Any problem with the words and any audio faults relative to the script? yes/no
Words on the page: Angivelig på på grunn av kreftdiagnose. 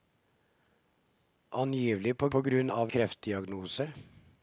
no